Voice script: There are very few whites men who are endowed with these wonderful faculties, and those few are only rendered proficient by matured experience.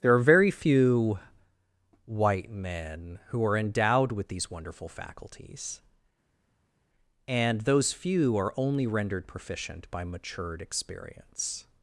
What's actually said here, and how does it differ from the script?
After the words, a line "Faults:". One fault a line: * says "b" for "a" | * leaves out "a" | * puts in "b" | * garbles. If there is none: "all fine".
There are very few white men who are endowed with these wonderful faculties, and those few are only rendered proficient by matured experience.
Faults:
* says "white" for "whites"